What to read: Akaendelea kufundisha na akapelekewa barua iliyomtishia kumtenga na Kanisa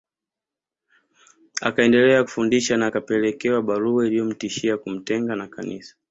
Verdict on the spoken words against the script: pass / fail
pass